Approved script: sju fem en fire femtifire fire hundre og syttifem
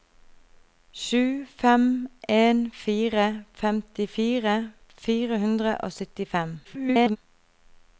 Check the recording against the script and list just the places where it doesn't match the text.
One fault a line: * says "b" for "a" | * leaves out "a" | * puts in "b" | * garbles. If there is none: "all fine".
* garbles